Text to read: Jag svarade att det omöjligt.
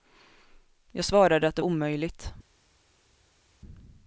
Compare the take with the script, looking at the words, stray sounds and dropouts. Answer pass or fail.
pass